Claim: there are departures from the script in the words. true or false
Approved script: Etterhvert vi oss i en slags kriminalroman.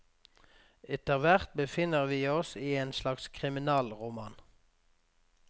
true